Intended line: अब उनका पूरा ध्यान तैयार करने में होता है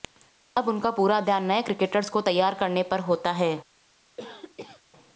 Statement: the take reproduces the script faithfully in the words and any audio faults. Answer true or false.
false